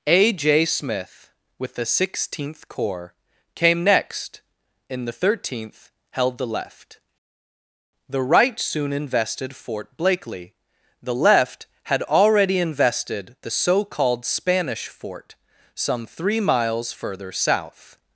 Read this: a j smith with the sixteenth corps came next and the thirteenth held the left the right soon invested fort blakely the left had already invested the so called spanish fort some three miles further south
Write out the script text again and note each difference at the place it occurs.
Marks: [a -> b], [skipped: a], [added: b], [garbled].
a j smith with the sixteenth corps came next [and -> in] the thirteenth held the left the right soon invested fort blakely the left had already invested the so called spanish fort some three miles further south